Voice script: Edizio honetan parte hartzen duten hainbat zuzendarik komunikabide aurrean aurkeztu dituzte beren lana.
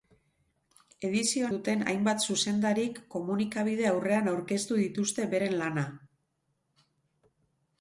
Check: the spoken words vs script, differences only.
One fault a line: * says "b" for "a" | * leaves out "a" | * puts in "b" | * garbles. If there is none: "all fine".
* leaves out "honetan parte hartzen"